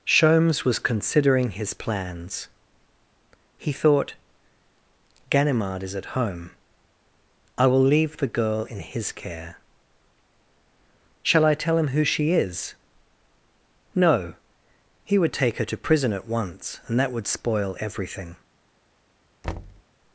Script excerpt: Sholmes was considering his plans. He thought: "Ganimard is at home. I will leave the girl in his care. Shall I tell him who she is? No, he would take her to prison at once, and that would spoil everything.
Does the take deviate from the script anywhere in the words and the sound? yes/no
yes